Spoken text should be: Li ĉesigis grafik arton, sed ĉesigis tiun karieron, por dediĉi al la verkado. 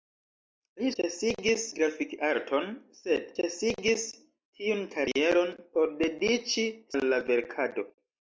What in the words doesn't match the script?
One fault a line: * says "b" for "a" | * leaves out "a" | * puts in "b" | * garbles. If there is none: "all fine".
all fine